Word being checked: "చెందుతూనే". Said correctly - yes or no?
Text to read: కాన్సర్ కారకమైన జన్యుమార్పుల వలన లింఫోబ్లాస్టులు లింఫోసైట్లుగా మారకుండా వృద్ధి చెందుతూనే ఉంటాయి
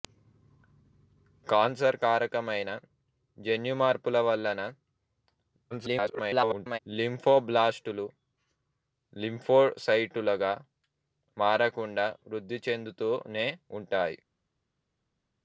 yes